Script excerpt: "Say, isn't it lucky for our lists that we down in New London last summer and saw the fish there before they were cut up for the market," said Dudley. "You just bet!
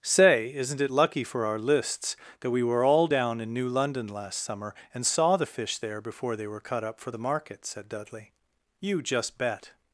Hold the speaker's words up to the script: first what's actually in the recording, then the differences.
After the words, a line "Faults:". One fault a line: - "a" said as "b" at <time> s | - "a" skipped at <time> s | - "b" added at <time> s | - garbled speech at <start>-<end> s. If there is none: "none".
"Say, isn't it lucky for our lists that we were all down in New London last summer and saw the fish there before they were cut up for the market," said Dudley. "You just bet!
Faults:
- "were all" added at 2.6 s